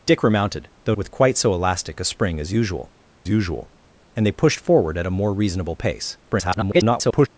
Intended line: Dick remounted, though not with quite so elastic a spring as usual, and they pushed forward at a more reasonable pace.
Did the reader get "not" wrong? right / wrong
wrong